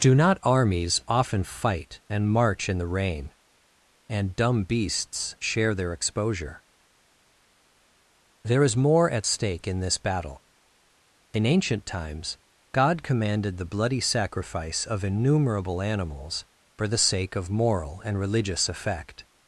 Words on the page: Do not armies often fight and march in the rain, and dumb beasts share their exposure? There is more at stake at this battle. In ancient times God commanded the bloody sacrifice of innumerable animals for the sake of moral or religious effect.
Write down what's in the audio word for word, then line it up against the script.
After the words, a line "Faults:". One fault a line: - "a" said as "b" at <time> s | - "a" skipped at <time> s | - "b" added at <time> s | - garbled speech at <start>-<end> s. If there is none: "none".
Do not armies often fight and march in the rain, and dumb beasts share their exposure? There is more at stake in this battle. In ancient times God commanded the bloody sacrifice of innumerable animals for the sake of moral and religious effect.
Faults:
- "at" said as "in" at 9.7 s
- "or" said as "and" at 18.0 s